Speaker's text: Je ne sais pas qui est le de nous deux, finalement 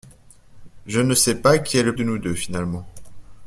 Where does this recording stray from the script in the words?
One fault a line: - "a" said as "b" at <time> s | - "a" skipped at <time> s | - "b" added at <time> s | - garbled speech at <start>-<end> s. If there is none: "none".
none